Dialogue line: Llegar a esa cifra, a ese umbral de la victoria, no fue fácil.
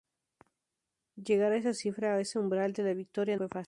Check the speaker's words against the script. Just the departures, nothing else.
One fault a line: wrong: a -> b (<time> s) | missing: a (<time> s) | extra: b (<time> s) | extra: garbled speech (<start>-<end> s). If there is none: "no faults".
missing: no (3.4 s)